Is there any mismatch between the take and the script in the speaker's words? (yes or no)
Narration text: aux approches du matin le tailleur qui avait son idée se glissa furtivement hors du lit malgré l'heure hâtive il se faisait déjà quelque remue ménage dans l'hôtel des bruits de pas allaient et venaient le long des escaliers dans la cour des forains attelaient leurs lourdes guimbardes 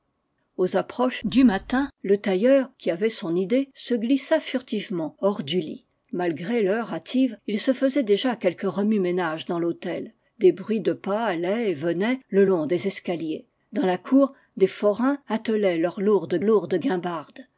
yes